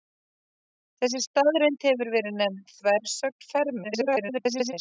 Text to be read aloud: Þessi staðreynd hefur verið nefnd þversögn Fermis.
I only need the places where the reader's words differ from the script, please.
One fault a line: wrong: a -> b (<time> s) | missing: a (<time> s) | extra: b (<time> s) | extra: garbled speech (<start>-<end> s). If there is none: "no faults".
extra: garbled speech (3.8-4.7 s)